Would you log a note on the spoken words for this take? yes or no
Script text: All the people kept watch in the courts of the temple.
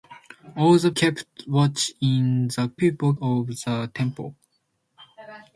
yes